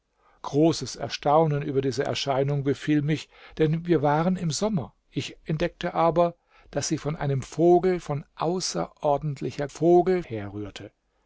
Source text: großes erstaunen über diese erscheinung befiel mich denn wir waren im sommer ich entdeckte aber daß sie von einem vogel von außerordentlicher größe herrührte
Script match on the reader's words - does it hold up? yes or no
no